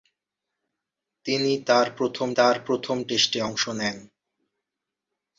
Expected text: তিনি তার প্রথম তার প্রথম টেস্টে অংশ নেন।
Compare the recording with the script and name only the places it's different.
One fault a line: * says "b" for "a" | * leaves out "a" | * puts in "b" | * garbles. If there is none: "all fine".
all fine